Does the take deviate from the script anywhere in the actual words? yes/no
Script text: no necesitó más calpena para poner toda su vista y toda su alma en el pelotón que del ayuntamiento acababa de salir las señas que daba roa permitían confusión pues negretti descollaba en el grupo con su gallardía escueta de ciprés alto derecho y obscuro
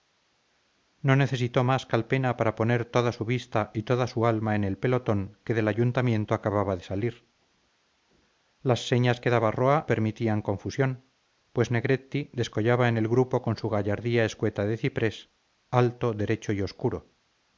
no